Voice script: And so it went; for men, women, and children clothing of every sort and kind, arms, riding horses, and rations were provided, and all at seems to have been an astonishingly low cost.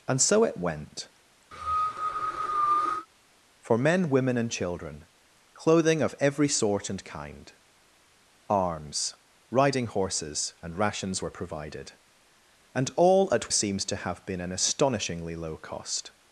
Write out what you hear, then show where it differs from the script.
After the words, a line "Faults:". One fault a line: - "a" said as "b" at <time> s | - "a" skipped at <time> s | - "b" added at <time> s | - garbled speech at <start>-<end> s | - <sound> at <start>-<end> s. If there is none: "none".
And so it went; for men, women, and children clothing of every sort and kind, arms, riding horses, and rations were provided, and all at seems to have been an astonishingly low cost.
Faults:
- cough at 1.5-3.1 s